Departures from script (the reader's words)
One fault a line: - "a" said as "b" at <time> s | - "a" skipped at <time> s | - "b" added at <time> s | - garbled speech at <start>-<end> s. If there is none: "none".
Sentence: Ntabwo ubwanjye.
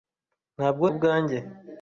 none